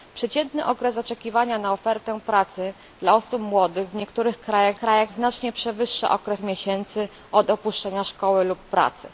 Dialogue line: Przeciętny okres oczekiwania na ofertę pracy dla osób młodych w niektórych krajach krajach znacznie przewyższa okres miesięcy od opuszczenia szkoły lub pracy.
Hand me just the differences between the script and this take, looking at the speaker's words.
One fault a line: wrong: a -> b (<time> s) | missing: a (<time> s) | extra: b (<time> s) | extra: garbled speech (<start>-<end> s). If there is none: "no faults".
no faults